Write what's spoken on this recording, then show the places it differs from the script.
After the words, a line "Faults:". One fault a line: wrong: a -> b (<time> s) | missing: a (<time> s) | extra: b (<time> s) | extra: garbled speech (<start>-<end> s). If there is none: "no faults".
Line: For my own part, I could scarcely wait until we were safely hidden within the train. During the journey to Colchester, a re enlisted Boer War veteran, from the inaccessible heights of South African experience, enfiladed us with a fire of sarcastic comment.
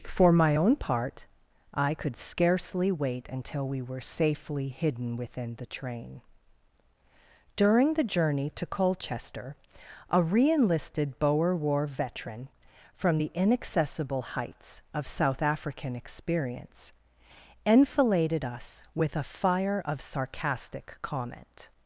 For my own part, I could scarcely wait until we were safely hidden within the train. During the journey to Colchester, a re enlisted Boer War veteran, from the inaccessible heights of South African experience, enfiladed us with a fire of sarcastic comment.
Faults:
no faults